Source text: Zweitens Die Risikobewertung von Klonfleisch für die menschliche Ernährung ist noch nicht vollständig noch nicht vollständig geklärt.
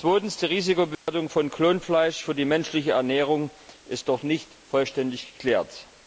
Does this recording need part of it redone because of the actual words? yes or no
yes